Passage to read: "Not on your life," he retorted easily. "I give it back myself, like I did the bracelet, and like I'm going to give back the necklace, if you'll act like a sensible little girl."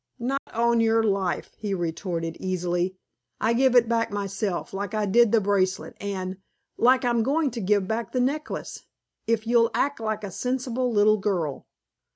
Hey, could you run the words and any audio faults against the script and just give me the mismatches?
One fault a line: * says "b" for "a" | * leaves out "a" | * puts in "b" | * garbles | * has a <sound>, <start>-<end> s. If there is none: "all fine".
* has a dropout, 0.4-0.5 s